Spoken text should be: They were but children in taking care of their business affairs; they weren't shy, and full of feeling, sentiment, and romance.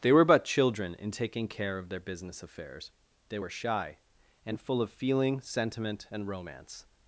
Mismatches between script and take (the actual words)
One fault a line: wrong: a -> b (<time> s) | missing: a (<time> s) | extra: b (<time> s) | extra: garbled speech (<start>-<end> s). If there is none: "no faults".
wrong: weren't -> were (3.4 s)